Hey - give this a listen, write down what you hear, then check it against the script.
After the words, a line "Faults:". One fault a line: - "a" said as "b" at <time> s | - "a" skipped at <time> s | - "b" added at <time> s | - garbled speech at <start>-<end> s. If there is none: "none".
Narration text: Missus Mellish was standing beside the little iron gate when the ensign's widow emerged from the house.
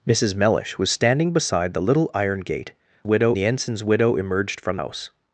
Missus Mellish was standing beside the little iron gate widow the ensign's widow emerged from house.
Faults:
- "when" said as "widow" at 3.0 s
- "the" skipped at 4.8 s